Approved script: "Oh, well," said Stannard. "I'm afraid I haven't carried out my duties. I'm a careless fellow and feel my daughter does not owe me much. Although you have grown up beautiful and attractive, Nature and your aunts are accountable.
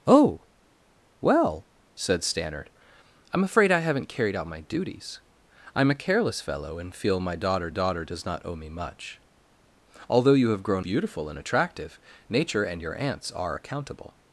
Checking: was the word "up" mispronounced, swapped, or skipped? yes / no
yes